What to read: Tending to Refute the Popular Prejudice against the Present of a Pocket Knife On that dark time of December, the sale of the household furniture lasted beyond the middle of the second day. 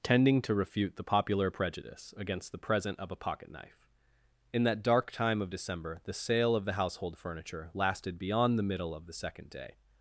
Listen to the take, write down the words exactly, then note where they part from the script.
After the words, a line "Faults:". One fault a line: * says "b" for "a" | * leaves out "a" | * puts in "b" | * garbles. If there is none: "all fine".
Tending to Refute the Popular Prejudice against the Present of a Pocket Knife In that dark time of December, the sale of the household furniture lasted beyond the middle of the second day.
Faults:
* says "In" for "On"